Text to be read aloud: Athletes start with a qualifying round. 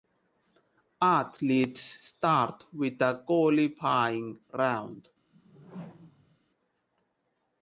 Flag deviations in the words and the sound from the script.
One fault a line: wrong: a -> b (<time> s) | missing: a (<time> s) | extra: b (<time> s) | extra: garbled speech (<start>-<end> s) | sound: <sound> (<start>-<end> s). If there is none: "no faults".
sound: whoosh (5.3-6.4 s)